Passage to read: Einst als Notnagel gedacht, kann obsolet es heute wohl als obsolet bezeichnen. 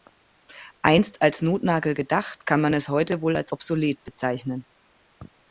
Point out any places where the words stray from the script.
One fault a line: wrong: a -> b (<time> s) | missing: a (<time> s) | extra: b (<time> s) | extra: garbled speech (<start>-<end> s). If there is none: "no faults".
wrong: obsolet -> man (2.6 s)